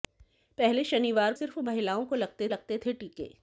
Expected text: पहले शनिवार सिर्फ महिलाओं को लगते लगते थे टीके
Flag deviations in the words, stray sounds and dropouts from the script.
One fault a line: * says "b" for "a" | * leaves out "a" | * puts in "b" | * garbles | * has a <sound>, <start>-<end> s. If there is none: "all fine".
all fine